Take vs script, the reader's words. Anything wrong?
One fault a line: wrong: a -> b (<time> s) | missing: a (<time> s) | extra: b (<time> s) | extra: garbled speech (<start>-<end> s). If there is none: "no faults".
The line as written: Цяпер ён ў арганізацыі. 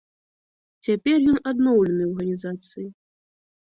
extra: адноўлены (1.5 s)